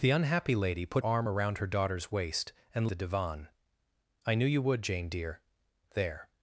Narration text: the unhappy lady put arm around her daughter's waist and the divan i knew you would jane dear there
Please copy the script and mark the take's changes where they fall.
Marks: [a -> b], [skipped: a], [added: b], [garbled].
the unhappy lady put arm around her daughter's waist and the divan i knew you would jane dear there